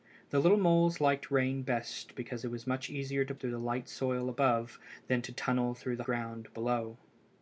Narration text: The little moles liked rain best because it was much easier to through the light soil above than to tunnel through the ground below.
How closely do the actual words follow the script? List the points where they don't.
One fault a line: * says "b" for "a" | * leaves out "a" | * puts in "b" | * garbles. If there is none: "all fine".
all fine